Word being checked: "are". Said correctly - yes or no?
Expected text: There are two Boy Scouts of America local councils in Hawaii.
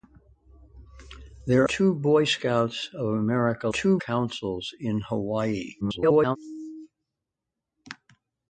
no